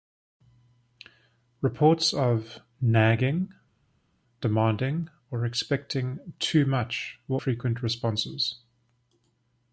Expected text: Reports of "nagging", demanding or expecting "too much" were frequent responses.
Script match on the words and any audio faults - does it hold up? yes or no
yes